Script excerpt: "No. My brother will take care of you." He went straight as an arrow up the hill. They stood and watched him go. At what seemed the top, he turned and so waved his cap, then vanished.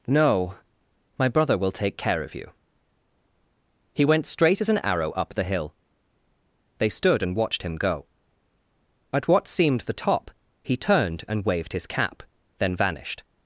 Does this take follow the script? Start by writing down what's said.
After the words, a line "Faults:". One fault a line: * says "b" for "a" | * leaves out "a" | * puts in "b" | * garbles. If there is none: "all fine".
"No. My brother will take care of you." He went straight as an arrow up the hill. They stood and watched him go. At what seemed the top, he turned and waved his cap, then vanished.
Faults:
* leaves out "so"